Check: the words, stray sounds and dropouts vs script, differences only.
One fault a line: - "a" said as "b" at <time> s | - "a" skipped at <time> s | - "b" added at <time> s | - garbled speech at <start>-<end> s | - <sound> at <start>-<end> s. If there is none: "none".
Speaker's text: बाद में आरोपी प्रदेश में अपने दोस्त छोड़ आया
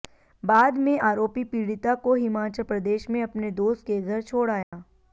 - "पीड़िता को हिमाचल" added at 1.5 s
- "के घर" added at 3.9 s
- dropout at 4.6-4.7 s